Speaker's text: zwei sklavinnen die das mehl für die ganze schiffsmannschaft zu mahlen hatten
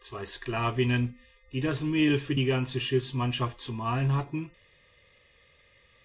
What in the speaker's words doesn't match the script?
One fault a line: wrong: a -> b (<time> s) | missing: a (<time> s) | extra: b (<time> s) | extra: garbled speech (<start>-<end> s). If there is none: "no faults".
no faults